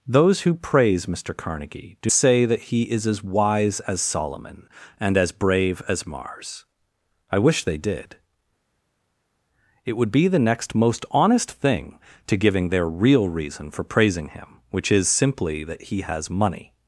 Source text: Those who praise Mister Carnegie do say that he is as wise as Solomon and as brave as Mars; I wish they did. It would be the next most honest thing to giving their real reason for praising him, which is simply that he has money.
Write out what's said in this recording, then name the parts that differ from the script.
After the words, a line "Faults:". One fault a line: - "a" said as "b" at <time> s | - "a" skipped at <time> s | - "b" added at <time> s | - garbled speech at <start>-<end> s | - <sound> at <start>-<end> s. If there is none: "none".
Those who praise Mister Carnegie do say that he is as wise as Solomon and as brave as Mars; I wish they did. It would be the next most honest thing to giving their real reason for praising him, which is simply that he has money.
Faults:
none